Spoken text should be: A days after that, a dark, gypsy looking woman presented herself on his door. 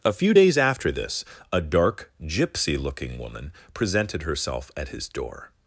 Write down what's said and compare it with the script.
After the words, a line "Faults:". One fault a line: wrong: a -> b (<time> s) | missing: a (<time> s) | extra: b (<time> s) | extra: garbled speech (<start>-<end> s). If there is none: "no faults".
A few days after this, a dark, gypsy looking woman presented herself at his door.
Faults:
extra: few (0.1 s)
wrong: that -> this (0.9 s)
wrong: on -> at (4.8 s)